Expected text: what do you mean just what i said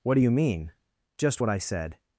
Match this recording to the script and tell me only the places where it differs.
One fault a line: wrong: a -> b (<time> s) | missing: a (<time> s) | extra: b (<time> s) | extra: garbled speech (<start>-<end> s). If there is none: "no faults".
no faults